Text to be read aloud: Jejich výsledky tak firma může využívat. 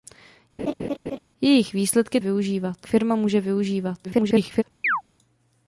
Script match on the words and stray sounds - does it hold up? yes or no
no